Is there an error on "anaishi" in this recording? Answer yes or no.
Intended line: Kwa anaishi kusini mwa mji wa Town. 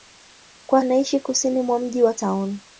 no